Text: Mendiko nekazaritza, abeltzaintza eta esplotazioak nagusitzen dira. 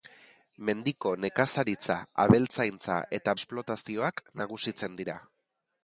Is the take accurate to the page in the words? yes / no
yes